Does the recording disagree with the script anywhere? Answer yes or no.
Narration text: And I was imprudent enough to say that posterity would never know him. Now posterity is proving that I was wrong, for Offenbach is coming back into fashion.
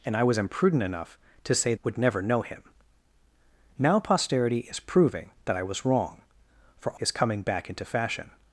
yes